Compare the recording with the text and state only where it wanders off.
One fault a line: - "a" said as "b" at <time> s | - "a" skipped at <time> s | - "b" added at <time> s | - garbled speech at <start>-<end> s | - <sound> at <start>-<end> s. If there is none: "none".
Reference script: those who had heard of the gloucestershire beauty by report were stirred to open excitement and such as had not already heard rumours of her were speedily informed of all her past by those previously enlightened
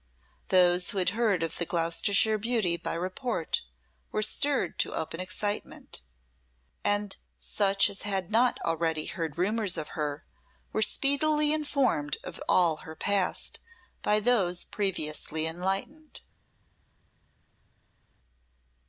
none